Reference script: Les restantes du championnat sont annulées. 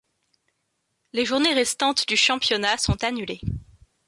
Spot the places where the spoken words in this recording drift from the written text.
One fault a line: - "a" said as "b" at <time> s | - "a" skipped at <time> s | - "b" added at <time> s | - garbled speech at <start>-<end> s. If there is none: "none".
- "journées" added at 1.2 s